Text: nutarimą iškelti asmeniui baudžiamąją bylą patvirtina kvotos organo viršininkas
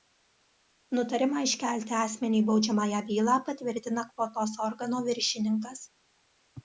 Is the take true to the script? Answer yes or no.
yes